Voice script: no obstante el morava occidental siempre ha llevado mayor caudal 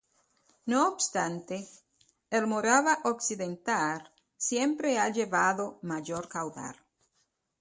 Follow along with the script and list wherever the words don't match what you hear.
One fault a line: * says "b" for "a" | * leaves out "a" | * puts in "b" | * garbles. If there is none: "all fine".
all fine